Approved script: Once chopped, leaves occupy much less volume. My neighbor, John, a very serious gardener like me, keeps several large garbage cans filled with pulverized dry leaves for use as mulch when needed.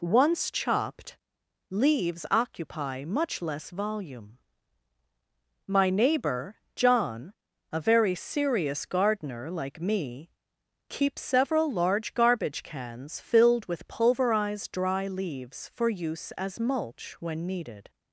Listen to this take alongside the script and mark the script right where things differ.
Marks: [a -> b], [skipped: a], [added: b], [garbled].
Once chopped, leaves occupy much less volume. My neighbor, John, a very serious gardener like me, keeps several large garbage cans filled with pulverized dry leaves for use as mulch when needed.